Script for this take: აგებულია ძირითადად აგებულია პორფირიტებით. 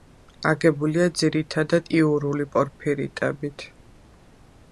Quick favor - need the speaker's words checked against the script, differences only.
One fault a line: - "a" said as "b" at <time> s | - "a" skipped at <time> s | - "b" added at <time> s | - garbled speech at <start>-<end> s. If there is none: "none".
- "აგებულია" said as "იურული" at 2.0 s